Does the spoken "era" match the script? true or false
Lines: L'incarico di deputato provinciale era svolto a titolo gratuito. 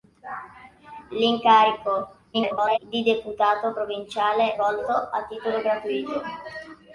false